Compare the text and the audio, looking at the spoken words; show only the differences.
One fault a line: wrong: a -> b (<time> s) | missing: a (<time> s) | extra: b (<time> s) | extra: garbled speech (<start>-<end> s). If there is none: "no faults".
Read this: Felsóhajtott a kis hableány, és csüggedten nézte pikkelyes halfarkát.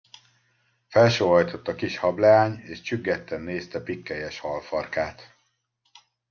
no faults